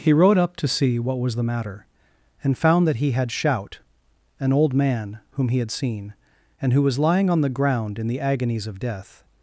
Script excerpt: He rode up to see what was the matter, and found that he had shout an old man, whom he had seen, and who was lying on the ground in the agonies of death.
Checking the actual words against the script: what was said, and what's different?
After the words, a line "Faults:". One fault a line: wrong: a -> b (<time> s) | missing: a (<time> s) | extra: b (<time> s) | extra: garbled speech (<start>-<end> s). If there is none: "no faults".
He rode up to see what was the matter, and found that he had shout an old man, whom he had seen, and who was lying on the ground in the agonies of death.
Faults:
no faults